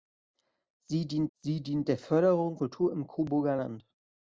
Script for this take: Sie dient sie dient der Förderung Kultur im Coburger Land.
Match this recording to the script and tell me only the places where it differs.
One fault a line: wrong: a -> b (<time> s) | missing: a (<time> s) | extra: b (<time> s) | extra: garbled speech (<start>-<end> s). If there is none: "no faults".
no faults